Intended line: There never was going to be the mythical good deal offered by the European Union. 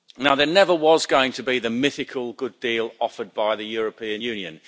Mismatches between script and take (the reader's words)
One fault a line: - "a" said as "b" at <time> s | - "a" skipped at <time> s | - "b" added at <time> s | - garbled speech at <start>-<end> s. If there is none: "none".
none